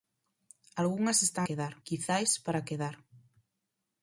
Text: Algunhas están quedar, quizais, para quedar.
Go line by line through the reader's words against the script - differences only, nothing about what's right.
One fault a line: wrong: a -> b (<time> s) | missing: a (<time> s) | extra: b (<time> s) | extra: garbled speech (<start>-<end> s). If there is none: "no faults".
no faults